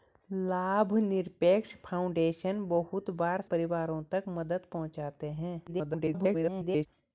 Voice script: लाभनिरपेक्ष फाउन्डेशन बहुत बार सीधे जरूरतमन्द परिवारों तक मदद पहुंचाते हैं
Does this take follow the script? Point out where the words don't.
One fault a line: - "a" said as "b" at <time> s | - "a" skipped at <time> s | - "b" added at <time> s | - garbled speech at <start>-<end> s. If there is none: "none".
- "सीधे जरूरतमन्द" skipped at 3.4 s
- garbled speech at 5.7-6.9 s